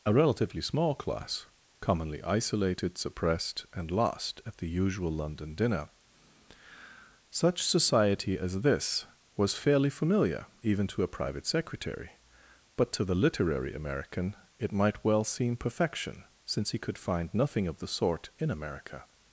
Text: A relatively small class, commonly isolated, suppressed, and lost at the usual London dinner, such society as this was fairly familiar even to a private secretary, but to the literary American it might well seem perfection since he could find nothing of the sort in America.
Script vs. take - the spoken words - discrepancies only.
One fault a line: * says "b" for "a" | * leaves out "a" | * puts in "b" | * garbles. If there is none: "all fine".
all fine